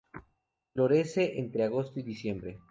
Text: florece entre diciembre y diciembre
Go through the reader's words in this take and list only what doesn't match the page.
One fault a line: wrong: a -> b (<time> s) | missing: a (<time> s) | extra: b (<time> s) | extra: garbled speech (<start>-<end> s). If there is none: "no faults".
wrong: diciembre -> agosto (1.6 s)